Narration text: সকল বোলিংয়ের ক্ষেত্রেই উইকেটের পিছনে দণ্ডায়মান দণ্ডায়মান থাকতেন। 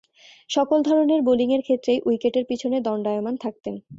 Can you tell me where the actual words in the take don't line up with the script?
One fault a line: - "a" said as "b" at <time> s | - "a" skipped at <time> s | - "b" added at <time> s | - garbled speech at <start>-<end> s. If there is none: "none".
- "ধরনের" added at 0.8 s
- "দণ্ডায়মান" skipped at 3.4 s